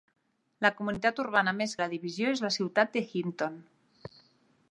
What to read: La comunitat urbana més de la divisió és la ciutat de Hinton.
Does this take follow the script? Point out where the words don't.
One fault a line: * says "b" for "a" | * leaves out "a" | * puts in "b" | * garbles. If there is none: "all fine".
all fine